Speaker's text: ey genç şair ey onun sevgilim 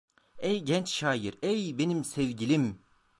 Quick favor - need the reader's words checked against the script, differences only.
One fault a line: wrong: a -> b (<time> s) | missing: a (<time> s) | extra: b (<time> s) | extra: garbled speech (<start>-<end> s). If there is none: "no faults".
wrong: onun -> benim (1.8 s)